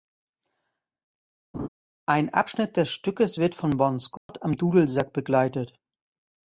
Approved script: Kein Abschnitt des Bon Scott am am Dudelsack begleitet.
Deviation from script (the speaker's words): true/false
true